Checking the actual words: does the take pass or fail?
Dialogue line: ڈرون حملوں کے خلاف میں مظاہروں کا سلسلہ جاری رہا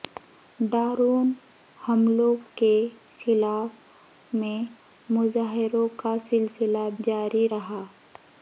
pass